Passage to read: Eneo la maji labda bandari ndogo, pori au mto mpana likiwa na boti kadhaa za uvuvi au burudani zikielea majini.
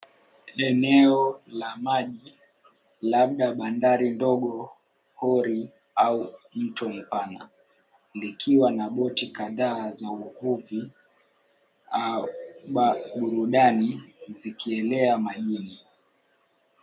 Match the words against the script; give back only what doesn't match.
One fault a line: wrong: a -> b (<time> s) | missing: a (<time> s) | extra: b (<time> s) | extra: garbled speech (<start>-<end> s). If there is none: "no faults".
no faults